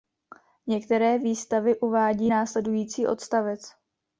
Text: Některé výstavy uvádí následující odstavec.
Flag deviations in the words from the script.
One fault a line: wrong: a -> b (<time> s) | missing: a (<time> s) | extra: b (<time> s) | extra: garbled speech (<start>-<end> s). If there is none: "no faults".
no faults